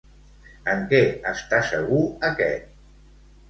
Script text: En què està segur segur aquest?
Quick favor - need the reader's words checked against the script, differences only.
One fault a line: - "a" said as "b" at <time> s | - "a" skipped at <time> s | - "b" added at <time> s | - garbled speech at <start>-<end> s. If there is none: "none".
- "segur" skipped at 2.0 s